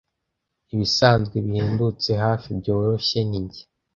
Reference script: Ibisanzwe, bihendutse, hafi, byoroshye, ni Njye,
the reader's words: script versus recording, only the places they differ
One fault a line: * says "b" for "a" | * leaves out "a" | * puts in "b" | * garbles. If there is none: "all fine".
all fine